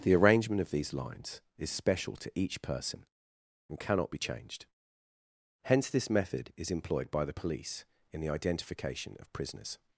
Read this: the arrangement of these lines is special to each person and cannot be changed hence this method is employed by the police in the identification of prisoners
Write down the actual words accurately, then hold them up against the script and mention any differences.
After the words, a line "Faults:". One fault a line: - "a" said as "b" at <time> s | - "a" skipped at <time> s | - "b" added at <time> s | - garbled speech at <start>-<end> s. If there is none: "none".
the arrangement of these lines is special to each person and cannot be changed hence this method is employed by the police in the identification of prisoners
Faults:
none